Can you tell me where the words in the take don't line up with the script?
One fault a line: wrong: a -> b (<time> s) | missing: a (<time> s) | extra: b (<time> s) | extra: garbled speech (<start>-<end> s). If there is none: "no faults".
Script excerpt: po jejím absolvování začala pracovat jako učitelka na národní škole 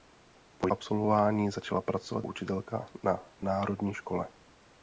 missing: jejím (0.7 s)
missing: jako (2.3 s)